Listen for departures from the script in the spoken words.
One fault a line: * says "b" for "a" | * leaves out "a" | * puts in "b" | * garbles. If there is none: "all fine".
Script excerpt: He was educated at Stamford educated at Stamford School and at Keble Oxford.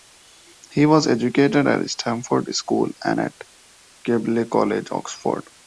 * leaves out "educated at Stamford"
* puts in "College"